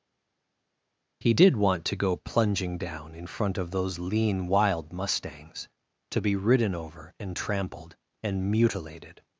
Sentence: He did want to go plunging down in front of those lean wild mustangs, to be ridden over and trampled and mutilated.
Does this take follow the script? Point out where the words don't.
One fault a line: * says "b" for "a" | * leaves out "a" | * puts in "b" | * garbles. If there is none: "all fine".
all fine